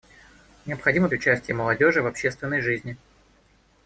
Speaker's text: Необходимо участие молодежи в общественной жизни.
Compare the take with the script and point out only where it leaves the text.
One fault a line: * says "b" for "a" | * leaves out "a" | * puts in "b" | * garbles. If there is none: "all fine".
all fine